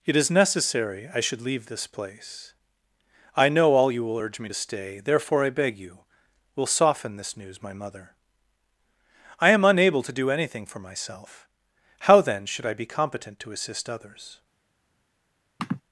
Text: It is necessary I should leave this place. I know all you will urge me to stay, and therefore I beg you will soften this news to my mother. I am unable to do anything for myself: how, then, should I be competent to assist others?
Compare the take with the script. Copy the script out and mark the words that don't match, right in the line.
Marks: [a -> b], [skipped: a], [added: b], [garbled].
It is necessary I should leave this place. I know all you will urge me to stay, [skipped: and] therefore I beg you will soften this news [skipped: to] my mother. I am unable to do anything for myself: how, then, should I be competent to assist others?